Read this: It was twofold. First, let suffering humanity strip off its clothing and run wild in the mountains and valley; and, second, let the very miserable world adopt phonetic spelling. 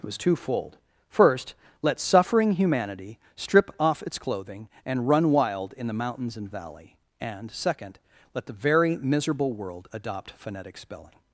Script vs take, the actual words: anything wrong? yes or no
no